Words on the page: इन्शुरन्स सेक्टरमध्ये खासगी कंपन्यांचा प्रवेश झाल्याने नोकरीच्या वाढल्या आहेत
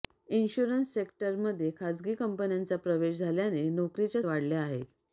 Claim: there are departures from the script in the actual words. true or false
false